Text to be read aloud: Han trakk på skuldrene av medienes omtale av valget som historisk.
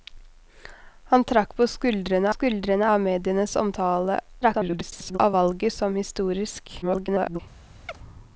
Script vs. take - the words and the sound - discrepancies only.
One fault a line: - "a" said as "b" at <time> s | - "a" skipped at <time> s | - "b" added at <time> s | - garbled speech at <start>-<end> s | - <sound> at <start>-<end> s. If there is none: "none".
- "skuldrene" added at 2.3 s
- garbled speech at 4.4-5.2 s
- garbled speech at 6.8-7.4 s
- chirp at 7.9-8.0 s